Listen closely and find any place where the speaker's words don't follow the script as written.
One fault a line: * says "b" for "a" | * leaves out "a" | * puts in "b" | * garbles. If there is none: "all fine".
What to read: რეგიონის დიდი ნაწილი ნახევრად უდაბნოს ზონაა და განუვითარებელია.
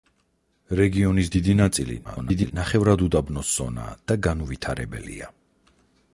* garbles